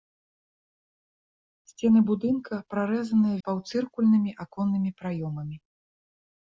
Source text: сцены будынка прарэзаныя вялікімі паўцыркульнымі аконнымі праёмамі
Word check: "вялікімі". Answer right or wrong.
wrong